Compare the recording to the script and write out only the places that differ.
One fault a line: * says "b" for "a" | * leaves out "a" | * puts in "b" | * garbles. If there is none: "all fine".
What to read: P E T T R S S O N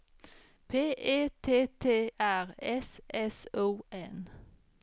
all fine